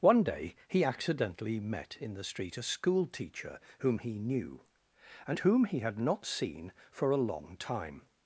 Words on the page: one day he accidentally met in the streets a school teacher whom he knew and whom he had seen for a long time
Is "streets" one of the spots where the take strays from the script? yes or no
yes